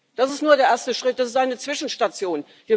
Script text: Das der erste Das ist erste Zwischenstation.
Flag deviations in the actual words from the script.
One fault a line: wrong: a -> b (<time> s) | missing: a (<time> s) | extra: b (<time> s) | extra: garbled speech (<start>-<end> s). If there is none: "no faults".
extra: ist nur (0.3 s)
extra: Schritt (0.9 s)
wrong: erste -> eine (1.4 s)